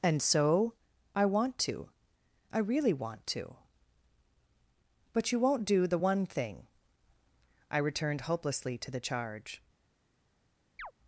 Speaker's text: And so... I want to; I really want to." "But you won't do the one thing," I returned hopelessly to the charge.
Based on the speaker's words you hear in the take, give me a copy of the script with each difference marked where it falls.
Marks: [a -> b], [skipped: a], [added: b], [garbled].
And so... I want to; I really want to." "But you won't do the one thing," I returned hopelessly to the charge.